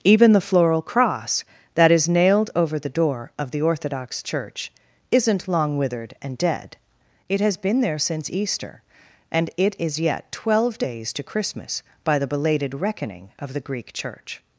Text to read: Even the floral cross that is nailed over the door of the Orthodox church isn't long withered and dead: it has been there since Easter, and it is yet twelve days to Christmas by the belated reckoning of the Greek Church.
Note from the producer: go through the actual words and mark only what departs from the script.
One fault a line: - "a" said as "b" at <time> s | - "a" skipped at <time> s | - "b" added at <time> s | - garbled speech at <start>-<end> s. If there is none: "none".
none